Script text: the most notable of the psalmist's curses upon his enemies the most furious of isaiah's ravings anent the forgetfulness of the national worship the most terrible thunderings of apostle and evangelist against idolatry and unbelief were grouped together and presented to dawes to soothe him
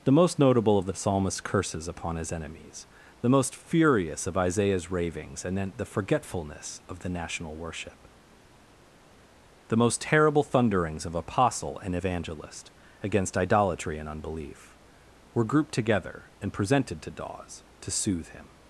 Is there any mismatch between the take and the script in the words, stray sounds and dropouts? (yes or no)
no